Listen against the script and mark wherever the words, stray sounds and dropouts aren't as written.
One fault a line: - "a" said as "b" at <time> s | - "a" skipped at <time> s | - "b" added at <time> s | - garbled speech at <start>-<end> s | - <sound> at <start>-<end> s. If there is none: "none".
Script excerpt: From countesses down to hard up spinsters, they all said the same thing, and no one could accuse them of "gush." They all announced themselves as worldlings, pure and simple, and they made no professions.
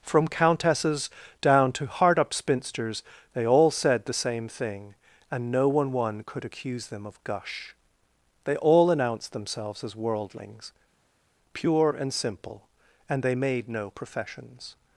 - "one" added at 5.9 s